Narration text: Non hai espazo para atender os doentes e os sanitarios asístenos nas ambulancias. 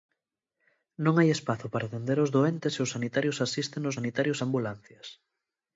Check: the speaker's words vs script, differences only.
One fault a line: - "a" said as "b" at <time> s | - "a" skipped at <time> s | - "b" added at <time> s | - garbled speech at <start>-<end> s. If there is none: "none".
- "nas" said as "sanitarios" at 4.0 s